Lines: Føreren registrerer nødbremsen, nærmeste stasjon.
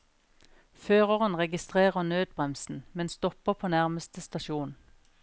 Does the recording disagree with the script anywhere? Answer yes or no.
yes